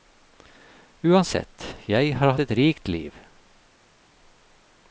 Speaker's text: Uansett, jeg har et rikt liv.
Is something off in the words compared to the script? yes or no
no